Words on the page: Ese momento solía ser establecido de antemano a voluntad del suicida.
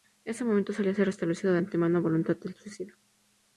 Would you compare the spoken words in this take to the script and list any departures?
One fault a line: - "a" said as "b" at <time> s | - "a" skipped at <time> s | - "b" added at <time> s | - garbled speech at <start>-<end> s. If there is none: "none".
none